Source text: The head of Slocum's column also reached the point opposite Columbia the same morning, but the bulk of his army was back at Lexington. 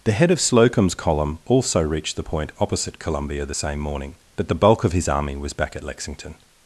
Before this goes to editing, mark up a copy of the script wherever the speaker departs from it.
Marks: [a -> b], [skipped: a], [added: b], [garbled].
The head of Slocum's column also reached the point opposite Columbia the same morning, but the bulk of his army was back at Lexington.